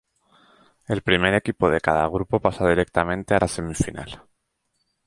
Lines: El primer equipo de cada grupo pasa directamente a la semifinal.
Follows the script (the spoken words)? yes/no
yes